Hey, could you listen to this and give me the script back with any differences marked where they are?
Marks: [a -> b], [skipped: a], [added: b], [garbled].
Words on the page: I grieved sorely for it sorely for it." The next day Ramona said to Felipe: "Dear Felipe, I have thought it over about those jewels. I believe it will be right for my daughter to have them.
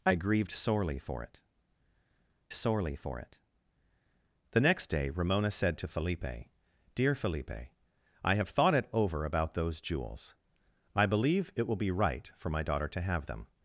I grieved sorely for it sorely for it." The next day Ramona said to Felipe: "Dear Felipe, I have thought it over about those jewels. I believe it will be right for my daughter to have them.